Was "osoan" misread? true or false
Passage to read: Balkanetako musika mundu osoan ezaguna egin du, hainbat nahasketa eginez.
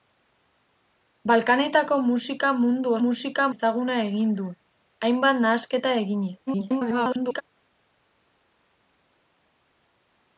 true